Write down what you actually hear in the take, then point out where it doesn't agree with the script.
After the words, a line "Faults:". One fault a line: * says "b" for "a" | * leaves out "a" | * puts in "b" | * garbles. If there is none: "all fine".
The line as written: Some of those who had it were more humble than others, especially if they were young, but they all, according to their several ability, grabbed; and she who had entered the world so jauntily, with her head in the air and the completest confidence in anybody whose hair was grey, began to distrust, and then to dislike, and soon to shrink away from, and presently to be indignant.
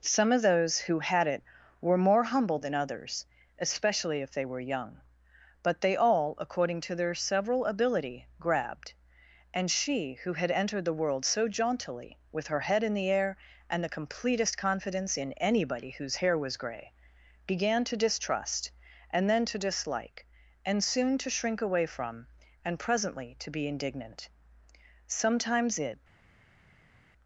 Some of those who had it were more humble than others, especially if they were young, but they all, according to their several ability, grabbed; and she who had entered the world so jauntily, with her head in the air and the completest confidence in anybody whose hair was grey, began to distrust, and then to dislike, and soon to shrink away from, and presently to be indignant. Sometimes it
Faults:
* puts in "Sometimes it"